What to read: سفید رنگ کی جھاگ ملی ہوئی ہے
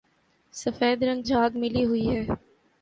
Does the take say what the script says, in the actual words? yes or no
no